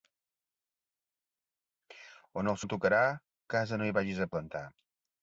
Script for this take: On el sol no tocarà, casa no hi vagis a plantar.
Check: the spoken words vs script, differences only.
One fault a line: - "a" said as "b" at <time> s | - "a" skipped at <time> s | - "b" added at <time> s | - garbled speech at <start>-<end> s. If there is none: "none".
- "sol" skipped at 2.6 s